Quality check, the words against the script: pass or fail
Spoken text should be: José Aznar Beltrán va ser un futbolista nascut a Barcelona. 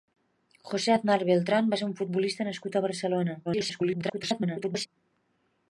fail